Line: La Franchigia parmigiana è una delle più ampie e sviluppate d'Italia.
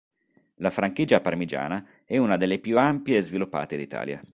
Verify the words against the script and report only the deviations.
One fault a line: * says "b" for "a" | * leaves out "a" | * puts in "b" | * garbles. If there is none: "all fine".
all fine